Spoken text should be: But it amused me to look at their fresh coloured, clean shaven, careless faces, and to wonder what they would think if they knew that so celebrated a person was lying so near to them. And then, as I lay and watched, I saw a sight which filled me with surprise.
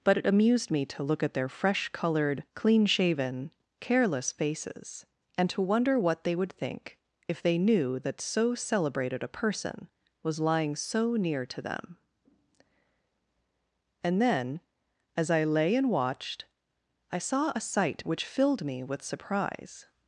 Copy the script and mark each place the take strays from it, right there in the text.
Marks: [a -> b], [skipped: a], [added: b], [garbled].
But it amused me to look at their fresh coloured, clean shaven, careless faces, and to wonder what they would think if they knew that so celebrated a person was lying so near to them. And then, as I lay and watched, I saw a sight which filled me with surprise.